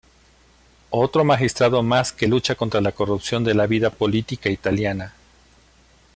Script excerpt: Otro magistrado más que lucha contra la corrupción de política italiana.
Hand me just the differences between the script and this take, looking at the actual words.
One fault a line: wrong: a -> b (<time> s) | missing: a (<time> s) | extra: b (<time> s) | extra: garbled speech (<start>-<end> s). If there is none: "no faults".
extra: la vida (3.5 s)